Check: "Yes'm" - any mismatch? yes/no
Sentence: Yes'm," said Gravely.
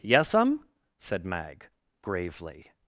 no